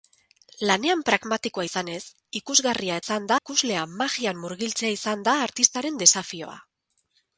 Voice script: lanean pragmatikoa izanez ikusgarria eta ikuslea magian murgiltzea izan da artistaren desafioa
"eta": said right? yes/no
no